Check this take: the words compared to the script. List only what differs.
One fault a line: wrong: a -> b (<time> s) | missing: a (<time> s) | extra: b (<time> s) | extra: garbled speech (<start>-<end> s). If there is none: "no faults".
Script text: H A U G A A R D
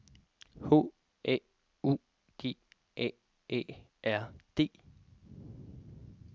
no faults